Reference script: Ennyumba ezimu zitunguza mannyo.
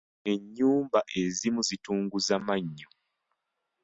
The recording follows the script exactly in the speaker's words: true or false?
true